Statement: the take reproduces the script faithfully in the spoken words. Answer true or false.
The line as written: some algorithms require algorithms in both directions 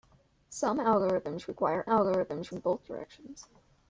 true